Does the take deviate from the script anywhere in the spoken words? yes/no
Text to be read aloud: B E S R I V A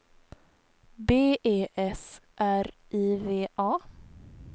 no